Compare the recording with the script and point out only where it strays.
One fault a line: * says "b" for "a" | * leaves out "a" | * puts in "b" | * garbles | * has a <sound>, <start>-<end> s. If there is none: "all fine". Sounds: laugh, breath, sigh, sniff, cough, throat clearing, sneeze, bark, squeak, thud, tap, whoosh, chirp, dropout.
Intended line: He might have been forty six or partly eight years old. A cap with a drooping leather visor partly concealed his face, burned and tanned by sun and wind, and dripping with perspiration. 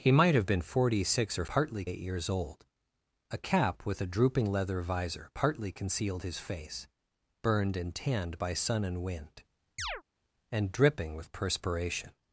* has a chirp, 9.8-10.0 s